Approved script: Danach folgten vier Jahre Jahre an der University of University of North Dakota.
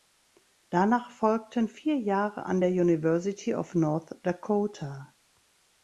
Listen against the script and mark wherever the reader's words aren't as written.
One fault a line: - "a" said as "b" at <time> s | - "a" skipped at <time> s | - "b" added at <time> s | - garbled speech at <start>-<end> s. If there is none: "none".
- "Jahre" skipped at 2.5 s
- "University of" skipped at 3.7 s